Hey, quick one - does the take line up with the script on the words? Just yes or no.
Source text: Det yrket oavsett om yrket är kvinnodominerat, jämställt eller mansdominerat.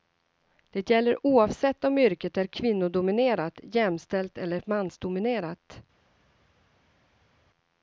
no